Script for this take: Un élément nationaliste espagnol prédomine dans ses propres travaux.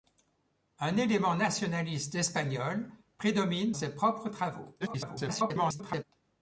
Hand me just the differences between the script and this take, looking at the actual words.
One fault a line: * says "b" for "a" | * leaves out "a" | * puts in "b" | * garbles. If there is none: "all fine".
* leaves out "dans"
* garbles